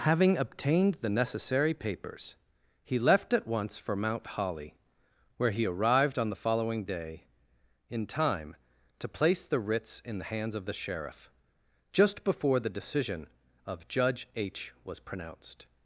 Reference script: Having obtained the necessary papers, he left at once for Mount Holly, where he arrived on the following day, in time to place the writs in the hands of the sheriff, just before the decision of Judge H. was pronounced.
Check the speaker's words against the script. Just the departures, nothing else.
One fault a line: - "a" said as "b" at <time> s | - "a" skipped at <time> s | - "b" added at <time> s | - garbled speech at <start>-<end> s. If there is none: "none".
none